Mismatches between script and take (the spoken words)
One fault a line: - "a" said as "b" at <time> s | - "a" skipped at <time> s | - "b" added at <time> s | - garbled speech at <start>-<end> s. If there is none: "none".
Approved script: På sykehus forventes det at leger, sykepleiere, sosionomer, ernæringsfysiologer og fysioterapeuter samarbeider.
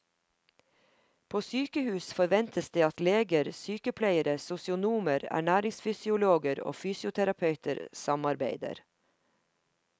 none